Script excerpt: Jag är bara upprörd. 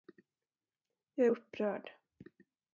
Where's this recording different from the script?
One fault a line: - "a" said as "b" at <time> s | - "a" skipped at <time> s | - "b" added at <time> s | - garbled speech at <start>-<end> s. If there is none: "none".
- "bara" skipped at 1.3 s